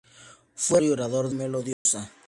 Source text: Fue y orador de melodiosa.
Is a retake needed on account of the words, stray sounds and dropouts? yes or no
yes